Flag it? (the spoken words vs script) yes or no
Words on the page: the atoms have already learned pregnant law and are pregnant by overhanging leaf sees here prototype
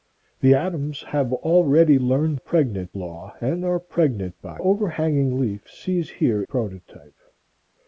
no